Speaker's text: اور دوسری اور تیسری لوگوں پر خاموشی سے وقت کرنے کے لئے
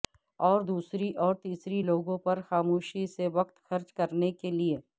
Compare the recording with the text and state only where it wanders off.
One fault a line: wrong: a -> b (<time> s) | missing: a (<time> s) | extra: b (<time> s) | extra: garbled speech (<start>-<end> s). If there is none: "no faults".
extra: خرچ (3.6 s)